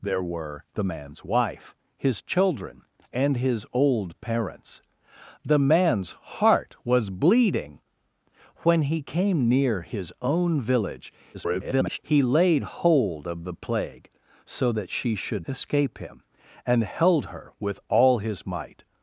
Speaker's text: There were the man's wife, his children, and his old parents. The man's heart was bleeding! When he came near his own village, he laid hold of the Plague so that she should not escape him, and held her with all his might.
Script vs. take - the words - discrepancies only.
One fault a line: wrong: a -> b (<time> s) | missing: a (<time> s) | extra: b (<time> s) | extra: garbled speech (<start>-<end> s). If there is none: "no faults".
extra: garbled speech (11.3-12.0 s)
missing: not (15.5 s)